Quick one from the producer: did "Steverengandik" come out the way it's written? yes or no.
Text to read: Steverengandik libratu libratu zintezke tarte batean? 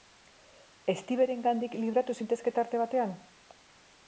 yes